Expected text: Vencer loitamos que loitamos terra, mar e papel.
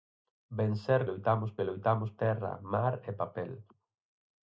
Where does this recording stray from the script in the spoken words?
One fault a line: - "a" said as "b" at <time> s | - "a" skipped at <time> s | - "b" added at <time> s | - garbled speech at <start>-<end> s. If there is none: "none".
none